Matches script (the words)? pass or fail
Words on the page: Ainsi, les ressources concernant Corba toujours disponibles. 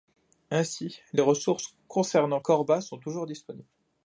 fail